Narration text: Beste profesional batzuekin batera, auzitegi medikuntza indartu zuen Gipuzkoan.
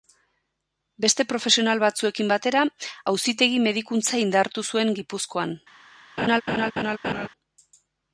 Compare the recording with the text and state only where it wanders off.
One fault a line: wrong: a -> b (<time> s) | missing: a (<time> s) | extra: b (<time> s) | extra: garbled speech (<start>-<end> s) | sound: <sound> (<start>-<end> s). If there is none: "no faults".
sound: laugh (6.2-7.3 s)